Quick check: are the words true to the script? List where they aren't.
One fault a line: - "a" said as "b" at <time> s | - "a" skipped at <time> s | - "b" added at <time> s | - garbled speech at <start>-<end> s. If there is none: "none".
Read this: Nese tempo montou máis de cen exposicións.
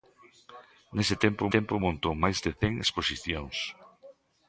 - "tempo" added at 1.5 s